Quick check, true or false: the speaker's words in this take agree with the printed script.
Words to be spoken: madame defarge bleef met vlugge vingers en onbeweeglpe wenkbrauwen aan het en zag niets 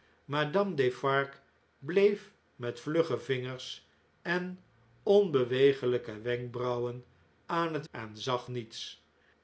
true